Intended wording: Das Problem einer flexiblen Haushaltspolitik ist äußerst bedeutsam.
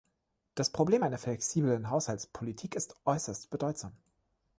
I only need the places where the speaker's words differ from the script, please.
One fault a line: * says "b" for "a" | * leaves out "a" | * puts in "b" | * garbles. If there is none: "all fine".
all fine